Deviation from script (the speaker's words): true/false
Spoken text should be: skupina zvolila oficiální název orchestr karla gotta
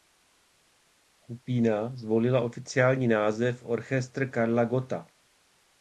false